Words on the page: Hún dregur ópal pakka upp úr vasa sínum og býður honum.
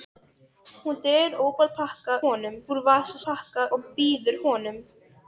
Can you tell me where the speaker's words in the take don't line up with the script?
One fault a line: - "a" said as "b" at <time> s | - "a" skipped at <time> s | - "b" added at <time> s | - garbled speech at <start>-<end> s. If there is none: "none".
- "upp" said as "honum" at 2.2 s
- "sínum" said as "pakka" at 3.3 s